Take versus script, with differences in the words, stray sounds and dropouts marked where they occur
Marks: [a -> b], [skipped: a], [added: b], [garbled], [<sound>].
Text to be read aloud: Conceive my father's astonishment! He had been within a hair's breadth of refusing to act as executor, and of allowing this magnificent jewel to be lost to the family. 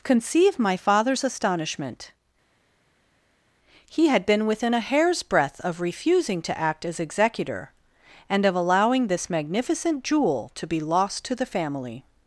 Conceive my father's astonishment! He had been within a hair's breadth of refusing to act as executor, and of allowing this magnificent jewel to be lost to the family.